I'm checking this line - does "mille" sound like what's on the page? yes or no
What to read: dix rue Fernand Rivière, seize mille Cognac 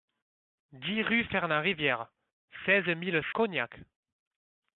yes